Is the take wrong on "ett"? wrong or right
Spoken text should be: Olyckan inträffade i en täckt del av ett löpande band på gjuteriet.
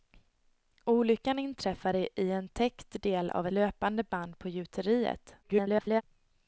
wrong